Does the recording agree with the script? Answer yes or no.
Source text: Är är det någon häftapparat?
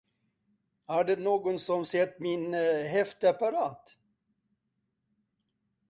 no